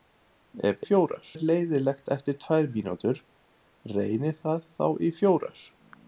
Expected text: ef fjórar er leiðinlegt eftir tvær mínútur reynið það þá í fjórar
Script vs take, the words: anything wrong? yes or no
no